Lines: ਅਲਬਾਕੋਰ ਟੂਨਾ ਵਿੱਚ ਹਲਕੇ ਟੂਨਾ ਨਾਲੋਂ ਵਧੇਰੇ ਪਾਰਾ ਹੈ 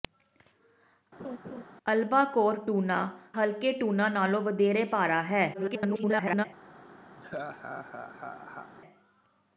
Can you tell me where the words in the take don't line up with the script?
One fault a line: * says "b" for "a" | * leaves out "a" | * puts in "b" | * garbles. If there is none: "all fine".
* leaves out "ਵਿੱਚ"
* garbles